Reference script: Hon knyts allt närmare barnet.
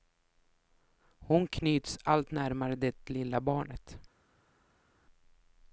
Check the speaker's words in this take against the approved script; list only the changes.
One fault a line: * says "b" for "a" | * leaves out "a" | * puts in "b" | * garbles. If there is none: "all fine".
* puts in "det lilla"